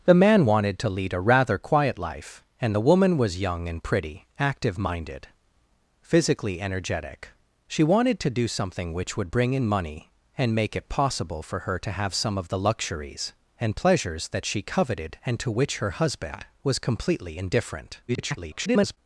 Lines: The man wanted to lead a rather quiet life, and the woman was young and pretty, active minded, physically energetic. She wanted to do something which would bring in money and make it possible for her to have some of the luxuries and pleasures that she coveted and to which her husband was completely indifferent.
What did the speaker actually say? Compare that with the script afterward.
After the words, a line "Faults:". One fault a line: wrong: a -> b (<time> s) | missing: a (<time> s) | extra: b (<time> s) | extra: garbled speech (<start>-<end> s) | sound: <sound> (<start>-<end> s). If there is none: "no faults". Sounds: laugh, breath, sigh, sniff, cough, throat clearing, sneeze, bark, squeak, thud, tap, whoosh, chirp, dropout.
The man wanted to lead a rather quiet life, and the woman was young and pretty, active minded, physically energetic. She wanted to do something which would bring in money and make it possible for her to have some of the luxuries and pleasures that she coveted and to which her husband was completely indifferent. [garbled]
Faults:
extra: garbled speech (18.1-19.0 s)